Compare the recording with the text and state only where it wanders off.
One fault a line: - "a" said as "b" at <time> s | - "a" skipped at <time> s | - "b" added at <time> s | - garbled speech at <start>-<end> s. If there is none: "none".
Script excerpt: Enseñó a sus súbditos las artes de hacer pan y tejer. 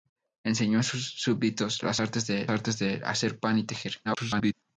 - "artes de" added at 2.5 s
- garbled speech at 4.0-4.5 s